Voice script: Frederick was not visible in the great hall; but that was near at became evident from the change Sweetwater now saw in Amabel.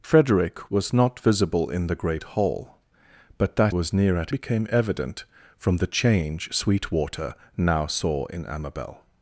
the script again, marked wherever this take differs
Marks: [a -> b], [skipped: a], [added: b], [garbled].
Frederick was not visible in the great hall; but that was near at became evident from the change Sweetwater now saw in Amabel.